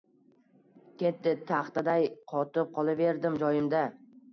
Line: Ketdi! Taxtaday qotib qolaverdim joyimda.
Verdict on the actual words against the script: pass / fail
pass